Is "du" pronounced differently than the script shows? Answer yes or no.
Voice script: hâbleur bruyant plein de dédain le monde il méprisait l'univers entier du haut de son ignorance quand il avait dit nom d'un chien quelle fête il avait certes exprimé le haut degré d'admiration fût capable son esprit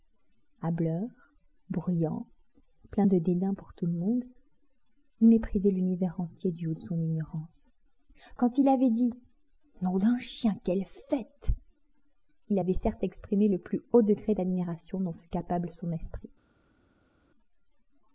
no